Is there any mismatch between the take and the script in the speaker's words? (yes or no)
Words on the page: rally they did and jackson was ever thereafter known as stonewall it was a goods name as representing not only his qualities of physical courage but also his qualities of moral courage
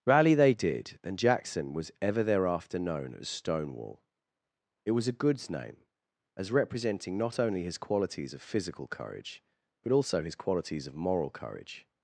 no